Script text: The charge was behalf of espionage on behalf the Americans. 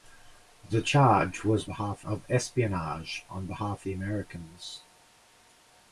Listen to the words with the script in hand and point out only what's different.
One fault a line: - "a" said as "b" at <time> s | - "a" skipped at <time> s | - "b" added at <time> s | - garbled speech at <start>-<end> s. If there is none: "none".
none